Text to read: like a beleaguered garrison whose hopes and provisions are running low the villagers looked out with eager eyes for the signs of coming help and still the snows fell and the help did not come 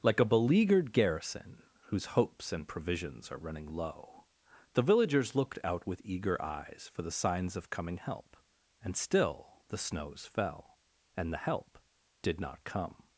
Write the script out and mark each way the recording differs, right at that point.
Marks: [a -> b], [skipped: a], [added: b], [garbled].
like a beleaguered garrison whose hopes and provisions are running low the villagers looked out with eager eyes for the signs of coming help and still the snows fell and the help did not come